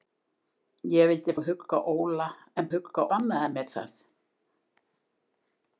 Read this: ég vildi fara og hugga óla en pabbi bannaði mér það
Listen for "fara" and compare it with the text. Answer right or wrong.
wrong